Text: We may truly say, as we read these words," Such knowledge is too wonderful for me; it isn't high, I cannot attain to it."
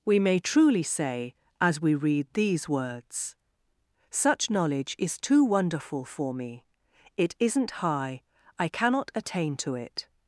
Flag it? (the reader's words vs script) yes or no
no